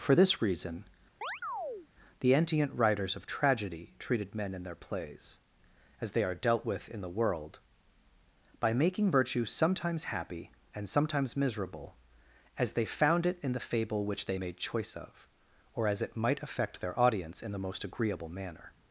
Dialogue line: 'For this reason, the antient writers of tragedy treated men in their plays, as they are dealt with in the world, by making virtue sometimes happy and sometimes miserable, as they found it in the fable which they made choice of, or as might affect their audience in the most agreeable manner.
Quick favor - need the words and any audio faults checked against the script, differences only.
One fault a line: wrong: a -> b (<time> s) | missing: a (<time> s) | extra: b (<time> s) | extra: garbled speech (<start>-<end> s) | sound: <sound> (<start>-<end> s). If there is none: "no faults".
sound: chirp (1.2-1.9 s)
extra: it (16.0 s)